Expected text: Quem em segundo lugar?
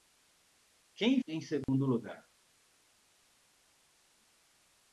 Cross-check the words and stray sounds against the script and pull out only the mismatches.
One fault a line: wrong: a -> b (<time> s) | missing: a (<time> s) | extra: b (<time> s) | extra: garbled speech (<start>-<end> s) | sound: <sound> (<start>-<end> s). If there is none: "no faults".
sound: dropout (1.6-1.7 s)